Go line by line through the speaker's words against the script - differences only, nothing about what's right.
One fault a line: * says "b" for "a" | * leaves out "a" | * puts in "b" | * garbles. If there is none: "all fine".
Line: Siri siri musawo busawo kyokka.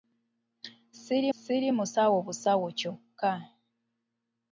all fine